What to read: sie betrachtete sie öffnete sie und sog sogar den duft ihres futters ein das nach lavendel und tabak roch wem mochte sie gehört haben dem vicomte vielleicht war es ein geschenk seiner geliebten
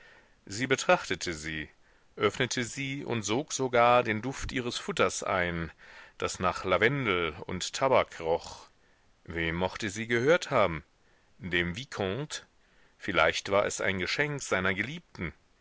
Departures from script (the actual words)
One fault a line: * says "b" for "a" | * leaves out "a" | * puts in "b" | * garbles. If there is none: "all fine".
all fine